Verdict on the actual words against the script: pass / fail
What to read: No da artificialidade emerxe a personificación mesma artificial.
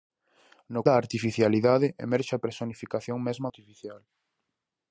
pass